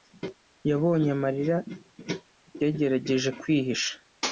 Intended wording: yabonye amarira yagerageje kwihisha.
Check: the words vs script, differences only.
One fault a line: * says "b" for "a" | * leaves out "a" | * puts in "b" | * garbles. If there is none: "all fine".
all fine